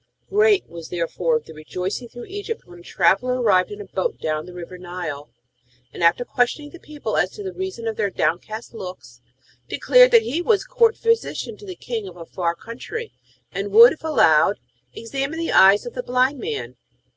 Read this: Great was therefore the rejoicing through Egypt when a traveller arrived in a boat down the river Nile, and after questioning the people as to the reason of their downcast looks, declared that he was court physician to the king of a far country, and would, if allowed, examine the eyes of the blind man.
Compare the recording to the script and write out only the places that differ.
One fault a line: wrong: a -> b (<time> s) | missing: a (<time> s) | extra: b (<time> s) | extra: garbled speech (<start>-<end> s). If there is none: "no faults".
no faults